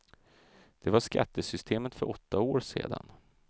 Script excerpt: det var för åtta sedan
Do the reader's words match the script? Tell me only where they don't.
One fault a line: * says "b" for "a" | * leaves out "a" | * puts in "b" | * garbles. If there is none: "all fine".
* puts in "skattesystemet"
* puts in "år"